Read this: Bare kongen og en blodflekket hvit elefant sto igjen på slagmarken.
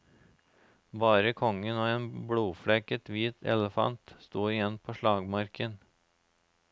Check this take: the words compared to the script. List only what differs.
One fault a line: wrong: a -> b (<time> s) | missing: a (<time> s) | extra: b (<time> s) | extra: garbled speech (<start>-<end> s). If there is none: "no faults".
no faults